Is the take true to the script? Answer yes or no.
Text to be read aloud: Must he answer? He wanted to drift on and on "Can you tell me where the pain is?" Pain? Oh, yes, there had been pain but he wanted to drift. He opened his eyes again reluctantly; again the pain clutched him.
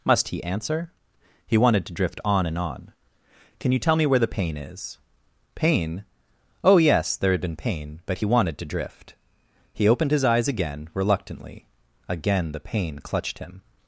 yes